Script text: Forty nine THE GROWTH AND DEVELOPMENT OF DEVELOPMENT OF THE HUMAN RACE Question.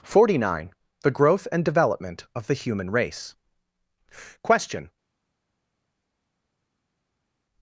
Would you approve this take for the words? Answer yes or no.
no